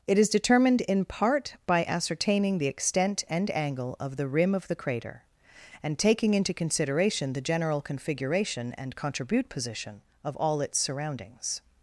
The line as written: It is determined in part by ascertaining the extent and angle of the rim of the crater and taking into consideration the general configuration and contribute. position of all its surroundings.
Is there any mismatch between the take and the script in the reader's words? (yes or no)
no